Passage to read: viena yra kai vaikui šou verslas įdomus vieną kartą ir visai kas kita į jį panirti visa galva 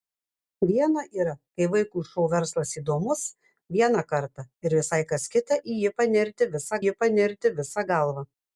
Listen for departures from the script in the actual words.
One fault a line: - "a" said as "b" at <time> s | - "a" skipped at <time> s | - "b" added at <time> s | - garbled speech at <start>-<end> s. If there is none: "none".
- "jį panirti visa" added at 6.8 s